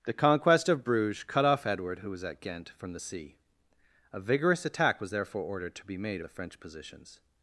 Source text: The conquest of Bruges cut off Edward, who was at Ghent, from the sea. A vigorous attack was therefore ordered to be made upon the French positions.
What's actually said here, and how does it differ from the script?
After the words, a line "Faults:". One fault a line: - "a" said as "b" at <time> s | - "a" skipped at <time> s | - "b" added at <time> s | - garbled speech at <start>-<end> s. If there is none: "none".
The conquest of Bruges cut off Edward, who was at Ghent, from the sea. A vigorous attack was therefore ordered to be made the French positions.
Faults:
- "upon" skipped at 6.2 s